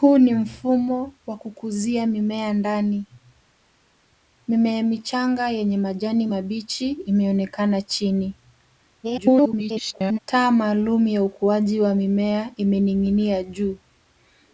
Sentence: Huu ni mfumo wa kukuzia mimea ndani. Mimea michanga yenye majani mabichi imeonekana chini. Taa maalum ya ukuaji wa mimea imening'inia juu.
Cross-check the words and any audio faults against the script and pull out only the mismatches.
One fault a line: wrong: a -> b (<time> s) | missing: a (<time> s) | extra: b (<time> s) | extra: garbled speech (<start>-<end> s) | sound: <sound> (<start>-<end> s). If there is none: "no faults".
extra: garbled speech (9.0-10.2 s)